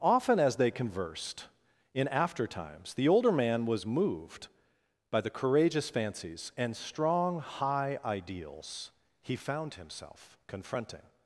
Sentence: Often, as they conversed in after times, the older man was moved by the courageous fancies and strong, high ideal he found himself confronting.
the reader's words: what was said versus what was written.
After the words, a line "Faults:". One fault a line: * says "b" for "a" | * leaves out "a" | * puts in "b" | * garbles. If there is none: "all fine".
Often, as they conversed in after times, the older man was moved by the courageous fancies and strong, high ideals he found himself confronting.
Faults:
* says "ideals" for "ideal"